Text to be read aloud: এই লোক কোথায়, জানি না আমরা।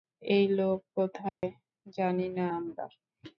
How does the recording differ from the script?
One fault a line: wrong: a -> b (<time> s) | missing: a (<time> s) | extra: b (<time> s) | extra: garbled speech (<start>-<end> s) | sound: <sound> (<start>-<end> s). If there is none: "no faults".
sound: dropout (1.3-1.4 s)